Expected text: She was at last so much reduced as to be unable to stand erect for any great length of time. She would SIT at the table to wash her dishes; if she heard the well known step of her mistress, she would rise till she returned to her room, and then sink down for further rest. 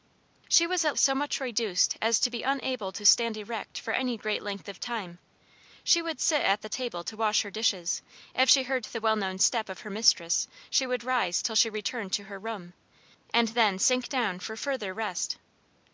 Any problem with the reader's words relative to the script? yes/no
yes